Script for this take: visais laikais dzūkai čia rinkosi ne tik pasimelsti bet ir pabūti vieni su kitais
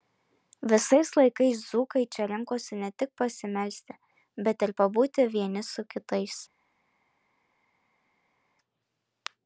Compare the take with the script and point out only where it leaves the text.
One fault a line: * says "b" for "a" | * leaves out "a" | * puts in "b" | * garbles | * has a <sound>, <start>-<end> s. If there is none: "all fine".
all fine